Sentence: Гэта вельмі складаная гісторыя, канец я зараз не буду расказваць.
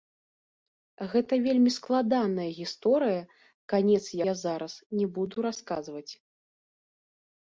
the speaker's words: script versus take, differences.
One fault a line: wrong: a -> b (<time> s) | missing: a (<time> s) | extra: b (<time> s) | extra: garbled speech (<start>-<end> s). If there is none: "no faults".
no faults